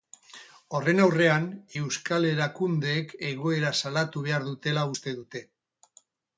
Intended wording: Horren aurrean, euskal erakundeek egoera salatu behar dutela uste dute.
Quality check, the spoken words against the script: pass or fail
pass